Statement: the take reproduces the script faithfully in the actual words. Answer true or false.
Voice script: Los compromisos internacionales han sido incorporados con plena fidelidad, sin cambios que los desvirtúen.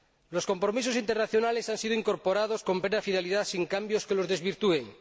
true